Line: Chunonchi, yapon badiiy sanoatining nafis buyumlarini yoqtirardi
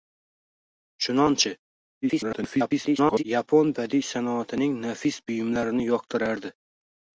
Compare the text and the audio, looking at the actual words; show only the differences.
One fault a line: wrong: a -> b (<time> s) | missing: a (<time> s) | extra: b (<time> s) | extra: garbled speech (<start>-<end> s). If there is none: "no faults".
extra: garbled speech (2.0-3.2 s)